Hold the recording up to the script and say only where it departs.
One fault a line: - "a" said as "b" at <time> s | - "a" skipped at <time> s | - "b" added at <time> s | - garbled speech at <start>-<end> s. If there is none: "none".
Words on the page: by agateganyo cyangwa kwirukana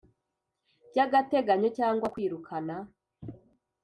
none